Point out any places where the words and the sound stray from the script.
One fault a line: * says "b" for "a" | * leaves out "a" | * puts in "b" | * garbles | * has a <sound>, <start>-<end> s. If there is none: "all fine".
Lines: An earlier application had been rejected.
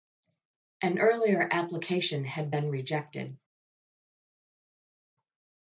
all fine